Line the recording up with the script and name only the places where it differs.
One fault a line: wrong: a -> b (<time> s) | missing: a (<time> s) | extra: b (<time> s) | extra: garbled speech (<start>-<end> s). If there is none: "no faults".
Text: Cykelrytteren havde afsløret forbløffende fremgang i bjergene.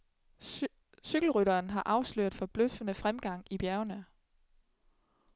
wrong: havde -> har (1.7 s)